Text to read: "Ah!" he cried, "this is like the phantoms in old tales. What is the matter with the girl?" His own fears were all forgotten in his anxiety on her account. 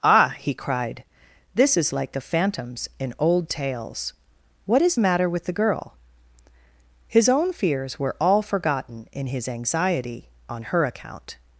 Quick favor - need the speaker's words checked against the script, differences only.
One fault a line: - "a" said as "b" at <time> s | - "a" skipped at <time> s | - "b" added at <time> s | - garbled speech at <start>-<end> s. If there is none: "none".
- "the" skipped at 5.0 s